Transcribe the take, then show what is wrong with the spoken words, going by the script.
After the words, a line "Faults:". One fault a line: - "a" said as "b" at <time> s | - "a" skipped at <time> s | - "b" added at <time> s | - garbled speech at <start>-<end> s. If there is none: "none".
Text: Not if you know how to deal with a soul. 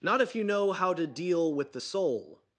Not if you know how to deal with the soul.
Faults:
- "a" said as "the" at 1.7 s